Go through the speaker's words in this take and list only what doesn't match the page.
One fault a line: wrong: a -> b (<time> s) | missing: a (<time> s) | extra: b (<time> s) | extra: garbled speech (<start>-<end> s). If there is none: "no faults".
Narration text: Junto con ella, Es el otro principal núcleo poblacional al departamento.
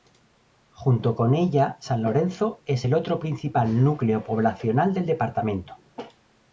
extra: San Lorenzo (1.8 s)
wrong: al -> del (4.9 s)